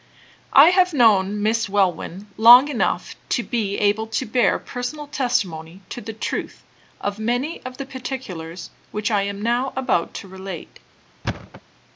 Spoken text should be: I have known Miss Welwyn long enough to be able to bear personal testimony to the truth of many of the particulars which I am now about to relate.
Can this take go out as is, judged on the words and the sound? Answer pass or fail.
fail